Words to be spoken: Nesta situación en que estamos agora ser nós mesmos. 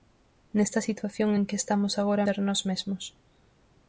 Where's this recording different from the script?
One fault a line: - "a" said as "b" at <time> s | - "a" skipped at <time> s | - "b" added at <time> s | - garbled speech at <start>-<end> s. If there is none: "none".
none